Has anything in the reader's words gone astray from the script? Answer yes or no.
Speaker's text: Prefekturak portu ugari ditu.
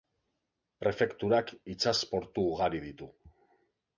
yes